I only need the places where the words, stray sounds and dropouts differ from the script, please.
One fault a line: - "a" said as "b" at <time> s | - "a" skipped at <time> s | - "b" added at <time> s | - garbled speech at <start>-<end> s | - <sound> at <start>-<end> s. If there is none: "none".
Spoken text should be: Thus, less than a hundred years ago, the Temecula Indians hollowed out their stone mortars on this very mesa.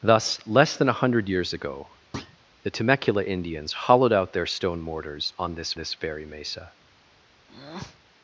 - thud at 2.1-2.4 s
- "this" added at 5.8 s
- breath at 7.5-8.0 s